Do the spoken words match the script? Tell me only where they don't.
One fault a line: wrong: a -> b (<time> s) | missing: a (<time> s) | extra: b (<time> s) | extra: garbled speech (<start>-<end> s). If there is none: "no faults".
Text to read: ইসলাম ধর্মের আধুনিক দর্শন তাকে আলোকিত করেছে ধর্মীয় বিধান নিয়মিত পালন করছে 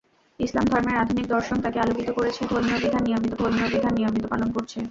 extra: ধর্মীয় বিধান নিয়মিত (3.4 s)